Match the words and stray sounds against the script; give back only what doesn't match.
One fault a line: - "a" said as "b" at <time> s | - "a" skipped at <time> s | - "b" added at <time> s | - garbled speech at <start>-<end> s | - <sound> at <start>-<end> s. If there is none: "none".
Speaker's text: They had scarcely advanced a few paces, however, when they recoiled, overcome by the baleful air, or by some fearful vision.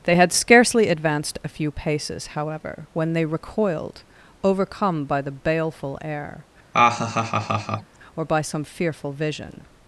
- laugh at 6.7-8.0 s